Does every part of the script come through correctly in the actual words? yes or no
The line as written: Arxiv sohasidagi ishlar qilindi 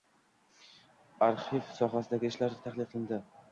no